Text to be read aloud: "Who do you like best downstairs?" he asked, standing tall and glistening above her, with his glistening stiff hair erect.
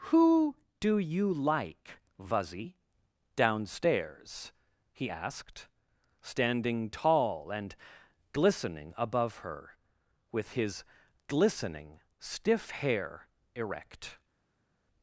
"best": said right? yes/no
no